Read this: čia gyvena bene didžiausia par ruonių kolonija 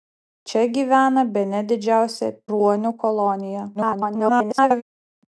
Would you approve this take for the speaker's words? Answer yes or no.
no